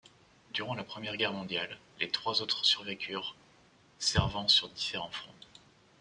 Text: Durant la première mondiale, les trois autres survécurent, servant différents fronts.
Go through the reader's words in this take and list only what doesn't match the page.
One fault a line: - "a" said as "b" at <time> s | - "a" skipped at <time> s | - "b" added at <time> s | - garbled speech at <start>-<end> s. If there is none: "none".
- "guerre" added at 1.1 s
- "sur" added at 4.5 s